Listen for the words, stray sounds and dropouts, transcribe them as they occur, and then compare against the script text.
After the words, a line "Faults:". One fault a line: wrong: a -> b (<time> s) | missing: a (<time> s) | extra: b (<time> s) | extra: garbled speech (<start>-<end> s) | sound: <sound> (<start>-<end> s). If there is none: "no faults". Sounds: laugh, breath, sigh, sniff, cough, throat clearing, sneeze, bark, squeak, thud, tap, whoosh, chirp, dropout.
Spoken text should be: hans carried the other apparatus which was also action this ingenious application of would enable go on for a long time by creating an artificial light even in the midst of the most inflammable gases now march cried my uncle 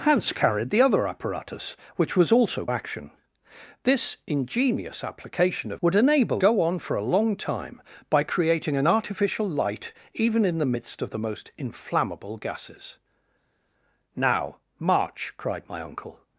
hans carried the other apparatus which was also action this ingenious application of would enable go on for a long time by creating an artificial light even in the midst of the most inflammable gases now march cried my uncle
Faults:
no faults